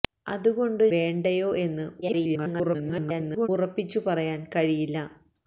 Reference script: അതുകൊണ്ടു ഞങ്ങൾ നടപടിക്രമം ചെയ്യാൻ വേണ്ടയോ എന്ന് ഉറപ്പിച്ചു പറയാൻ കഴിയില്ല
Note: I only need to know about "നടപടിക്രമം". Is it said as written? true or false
false